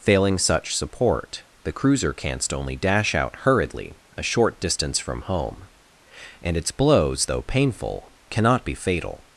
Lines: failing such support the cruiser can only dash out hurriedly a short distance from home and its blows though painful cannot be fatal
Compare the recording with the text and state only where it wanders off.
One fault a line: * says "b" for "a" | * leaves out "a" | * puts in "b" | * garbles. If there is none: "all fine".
* says "canst" for "can"